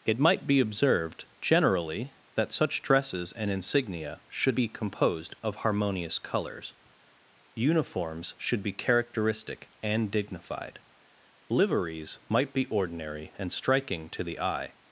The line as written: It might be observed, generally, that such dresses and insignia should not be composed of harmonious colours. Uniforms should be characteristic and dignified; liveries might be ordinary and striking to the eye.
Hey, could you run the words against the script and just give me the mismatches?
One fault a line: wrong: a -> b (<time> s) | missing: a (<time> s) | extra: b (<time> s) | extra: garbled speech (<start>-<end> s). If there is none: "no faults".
missing: not (4.6 s)